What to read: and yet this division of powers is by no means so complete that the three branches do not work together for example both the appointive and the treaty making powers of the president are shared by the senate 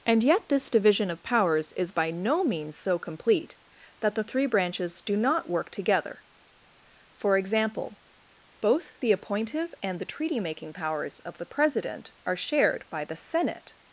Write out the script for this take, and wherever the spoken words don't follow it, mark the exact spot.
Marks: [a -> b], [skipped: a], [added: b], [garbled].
and yet this division of powers is by no means so complete that the three branches do not work together for example both the appointive and the treaty making powers of the president are shared by the senate